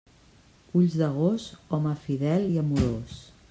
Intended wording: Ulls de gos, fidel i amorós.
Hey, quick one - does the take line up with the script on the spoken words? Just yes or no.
no